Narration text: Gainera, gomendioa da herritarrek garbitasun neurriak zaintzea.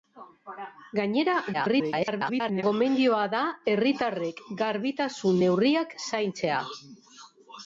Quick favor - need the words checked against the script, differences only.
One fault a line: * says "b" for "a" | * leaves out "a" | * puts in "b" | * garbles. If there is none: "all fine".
* garbles